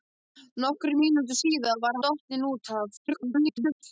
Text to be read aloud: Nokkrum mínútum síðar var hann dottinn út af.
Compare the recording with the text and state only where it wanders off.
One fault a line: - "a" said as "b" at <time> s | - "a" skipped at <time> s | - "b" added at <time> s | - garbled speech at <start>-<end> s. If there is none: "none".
- "hann" skipped at 2.0 s
- garbled speech at 3.0-3.8 s